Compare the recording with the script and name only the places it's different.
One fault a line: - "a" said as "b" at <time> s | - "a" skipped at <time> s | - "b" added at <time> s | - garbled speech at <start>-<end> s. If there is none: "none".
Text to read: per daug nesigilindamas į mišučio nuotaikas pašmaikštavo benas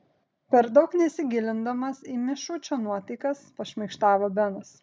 none